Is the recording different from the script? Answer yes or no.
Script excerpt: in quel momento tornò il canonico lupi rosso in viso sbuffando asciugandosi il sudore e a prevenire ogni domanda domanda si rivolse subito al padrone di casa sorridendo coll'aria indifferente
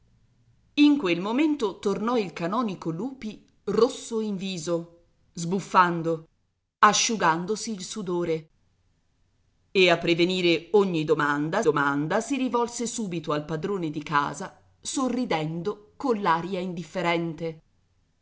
no